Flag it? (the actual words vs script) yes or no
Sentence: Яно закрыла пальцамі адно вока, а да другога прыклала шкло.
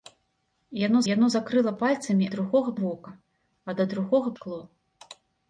yes